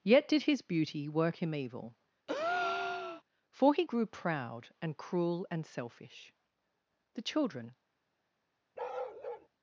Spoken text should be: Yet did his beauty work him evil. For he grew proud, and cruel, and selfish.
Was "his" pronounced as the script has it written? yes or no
yes